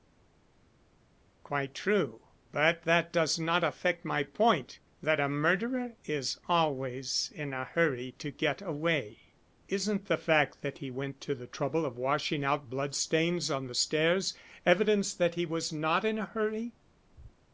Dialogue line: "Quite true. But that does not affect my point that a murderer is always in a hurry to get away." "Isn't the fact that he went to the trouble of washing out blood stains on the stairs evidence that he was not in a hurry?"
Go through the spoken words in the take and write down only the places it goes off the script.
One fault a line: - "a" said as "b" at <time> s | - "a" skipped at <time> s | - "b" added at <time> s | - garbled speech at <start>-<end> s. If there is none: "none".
none